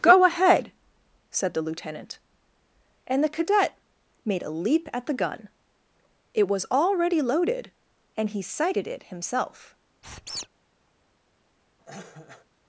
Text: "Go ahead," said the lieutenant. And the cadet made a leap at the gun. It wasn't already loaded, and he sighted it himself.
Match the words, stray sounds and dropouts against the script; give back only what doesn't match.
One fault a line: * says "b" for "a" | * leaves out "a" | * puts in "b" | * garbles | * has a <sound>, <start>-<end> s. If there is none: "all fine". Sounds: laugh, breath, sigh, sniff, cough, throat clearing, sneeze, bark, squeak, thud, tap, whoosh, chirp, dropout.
* says "was" for "wasn't"
* has a squeak, 10.0-10.5 s
* has a cough, 11.8-12.5 s